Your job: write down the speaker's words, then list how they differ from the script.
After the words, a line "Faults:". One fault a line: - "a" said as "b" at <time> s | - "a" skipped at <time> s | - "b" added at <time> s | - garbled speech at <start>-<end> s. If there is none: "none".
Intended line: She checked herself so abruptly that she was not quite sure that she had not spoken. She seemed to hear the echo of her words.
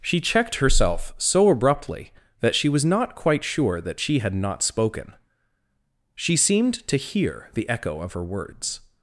She checked herself so abruptly that she was not quite sure that she had not spoken. She seemed to hear the echo of her words.
Faults:
none